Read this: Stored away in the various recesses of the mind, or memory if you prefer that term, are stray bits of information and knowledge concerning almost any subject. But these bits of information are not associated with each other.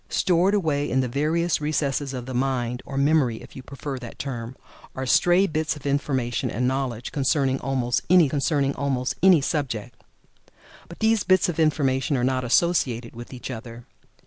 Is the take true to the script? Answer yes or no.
no